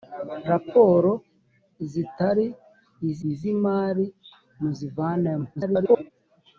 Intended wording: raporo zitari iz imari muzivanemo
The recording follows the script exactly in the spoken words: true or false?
false